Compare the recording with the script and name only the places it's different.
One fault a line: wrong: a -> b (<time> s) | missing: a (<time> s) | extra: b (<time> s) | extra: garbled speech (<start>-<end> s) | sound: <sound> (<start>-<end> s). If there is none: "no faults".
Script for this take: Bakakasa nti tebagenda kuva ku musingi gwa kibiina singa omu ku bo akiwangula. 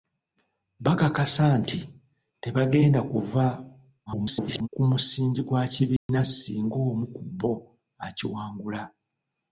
extra: garbled speech (4.1-4.7 s)
sound: dropout (6.0-6.1 s)